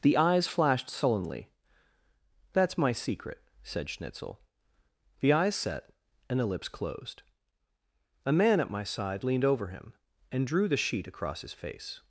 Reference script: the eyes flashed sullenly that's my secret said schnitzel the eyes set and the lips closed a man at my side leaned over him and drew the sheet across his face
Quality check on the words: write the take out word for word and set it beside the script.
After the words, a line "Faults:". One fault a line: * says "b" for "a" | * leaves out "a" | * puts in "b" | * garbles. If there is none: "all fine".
the eyes flashed sullenly that's my secret said schnitzel the eyes set and the lips closed a man at my side leaned over him and drew the sheet across his face
Faults:
all fine